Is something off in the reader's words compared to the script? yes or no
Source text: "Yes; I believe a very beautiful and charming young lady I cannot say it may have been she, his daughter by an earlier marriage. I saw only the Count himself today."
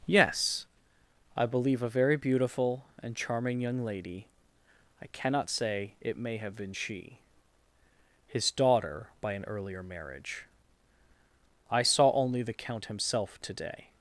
no